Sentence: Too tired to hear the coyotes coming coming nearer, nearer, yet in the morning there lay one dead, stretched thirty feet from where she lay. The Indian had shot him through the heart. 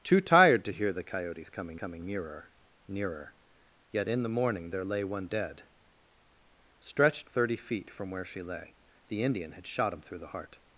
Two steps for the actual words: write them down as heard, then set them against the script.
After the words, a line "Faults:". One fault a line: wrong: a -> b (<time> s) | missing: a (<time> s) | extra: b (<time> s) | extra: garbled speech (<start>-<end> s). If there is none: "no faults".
Too tired to hear the coyotes coming coming nearer, nearer, yet in the morning there lay one dead, stretched thirty feet from where she lay. The Indian had shot him through the heart.
Faults:
no faults